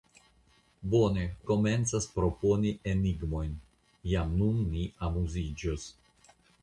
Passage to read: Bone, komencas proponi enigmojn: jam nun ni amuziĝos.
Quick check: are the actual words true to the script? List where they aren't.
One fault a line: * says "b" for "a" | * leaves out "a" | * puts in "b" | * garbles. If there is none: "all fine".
all fine